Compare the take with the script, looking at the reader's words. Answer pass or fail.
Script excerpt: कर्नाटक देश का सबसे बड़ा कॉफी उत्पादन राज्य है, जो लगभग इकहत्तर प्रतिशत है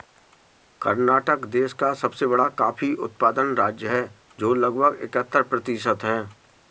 pass